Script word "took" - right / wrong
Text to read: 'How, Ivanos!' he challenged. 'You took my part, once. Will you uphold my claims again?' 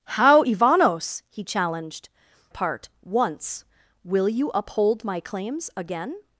wrong